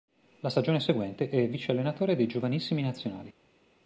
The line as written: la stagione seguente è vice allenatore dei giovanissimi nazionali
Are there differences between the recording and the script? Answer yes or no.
no